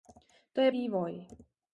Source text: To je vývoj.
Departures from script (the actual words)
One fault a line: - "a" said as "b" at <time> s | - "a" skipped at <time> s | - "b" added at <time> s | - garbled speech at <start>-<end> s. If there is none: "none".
none